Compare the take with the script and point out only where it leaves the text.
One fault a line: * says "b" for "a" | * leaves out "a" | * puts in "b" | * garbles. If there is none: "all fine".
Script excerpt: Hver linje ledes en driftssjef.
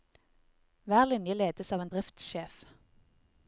* puts in "av"